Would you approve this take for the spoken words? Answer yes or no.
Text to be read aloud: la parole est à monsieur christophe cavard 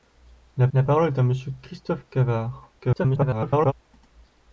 no